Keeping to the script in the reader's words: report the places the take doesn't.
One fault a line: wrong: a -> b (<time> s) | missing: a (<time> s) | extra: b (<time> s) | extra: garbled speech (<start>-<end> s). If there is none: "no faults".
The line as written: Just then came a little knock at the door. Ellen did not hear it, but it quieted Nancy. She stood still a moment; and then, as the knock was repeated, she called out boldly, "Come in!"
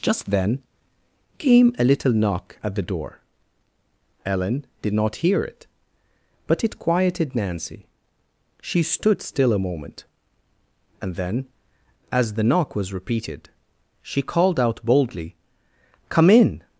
no faults